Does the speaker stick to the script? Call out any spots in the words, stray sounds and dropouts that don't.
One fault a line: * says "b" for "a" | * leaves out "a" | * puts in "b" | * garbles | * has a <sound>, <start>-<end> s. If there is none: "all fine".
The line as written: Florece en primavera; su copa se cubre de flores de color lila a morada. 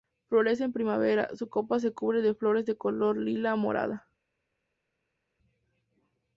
all fine